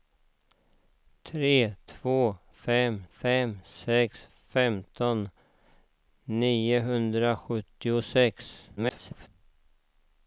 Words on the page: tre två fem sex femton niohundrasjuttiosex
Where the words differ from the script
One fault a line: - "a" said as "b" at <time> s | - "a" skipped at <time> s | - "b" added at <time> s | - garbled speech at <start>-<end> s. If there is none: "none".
- "fem" added at 3.1 s
- garbled speech at 8.8-9.3 s